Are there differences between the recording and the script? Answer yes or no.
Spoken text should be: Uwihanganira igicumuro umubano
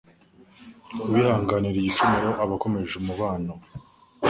yes